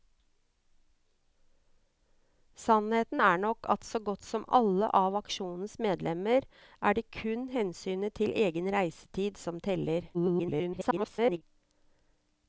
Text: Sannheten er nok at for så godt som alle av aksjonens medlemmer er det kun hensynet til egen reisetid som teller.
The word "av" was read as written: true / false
true